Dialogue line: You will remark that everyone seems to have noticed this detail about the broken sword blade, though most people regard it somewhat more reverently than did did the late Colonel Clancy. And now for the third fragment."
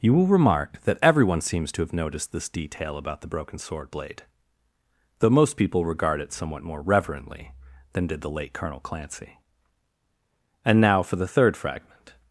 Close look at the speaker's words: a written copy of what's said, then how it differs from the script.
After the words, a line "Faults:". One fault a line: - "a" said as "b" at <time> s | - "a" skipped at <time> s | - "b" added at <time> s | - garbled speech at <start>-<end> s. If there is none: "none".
You will remark that everyone seems to have noticed this detail about the broken sword blade, though most people regard it somewhat more reverently than did the late Colonel Clancy. And now for the third fragment."
Faults:
- "did" skipped at 8.2 s